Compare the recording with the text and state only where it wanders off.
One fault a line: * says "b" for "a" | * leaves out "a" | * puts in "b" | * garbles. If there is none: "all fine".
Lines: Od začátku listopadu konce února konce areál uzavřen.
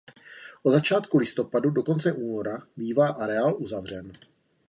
* puts in "do"
* says "bývá" for "konce"